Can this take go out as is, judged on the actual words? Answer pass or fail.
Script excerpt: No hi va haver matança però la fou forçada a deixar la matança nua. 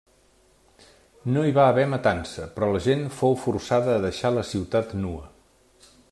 fail